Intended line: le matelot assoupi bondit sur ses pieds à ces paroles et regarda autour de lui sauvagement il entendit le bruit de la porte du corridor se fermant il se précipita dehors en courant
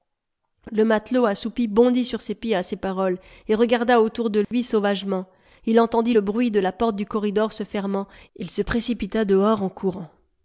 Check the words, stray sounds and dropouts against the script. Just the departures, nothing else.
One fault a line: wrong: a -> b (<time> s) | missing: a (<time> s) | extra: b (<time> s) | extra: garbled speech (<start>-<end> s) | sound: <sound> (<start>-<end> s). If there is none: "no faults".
sound: dropout (4.4-4.5 s)